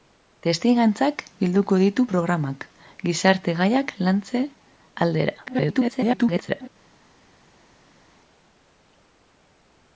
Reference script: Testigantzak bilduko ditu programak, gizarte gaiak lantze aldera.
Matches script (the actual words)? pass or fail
fail